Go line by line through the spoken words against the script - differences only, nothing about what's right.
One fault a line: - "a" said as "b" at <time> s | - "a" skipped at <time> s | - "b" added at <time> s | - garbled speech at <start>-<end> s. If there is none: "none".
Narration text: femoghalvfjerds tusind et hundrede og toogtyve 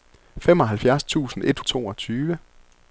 - "hundrede" skipped at 1.6 s